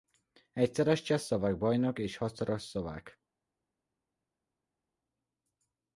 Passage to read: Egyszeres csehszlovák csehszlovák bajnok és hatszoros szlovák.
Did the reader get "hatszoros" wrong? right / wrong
right